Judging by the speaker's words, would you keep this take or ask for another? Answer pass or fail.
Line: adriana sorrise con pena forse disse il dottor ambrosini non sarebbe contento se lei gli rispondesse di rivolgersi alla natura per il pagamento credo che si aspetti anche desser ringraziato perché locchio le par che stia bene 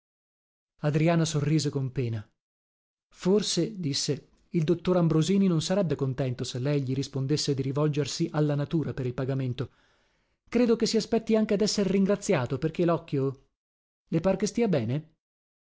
pass